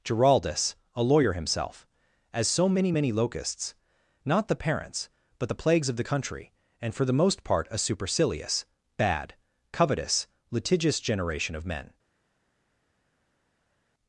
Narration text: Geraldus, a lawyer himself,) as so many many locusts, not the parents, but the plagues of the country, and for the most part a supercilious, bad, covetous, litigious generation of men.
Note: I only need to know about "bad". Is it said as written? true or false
true